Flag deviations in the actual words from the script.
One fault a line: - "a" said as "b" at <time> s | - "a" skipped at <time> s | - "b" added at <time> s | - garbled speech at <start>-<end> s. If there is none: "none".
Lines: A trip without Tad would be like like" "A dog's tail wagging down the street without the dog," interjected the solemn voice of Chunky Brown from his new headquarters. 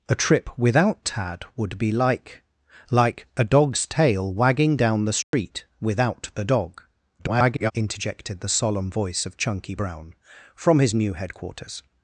- garbled speech at 7.2-7.7 s